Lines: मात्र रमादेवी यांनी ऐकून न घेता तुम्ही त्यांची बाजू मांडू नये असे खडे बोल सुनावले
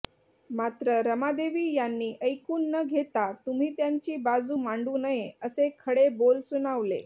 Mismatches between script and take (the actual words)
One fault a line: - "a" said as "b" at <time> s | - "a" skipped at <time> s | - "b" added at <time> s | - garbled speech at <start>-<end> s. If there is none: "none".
none